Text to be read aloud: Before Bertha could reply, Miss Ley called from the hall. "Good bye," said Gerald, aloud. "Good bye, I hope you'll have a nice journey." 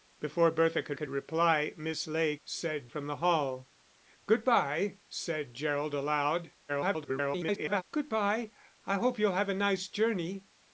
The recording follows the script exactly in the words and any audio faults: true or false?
false